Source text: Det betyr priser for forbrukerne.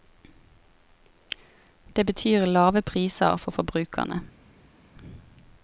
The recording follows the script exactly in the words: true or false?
false